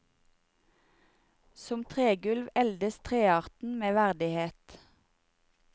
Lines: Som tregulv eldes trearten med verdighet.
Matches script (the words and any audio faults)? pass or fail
pass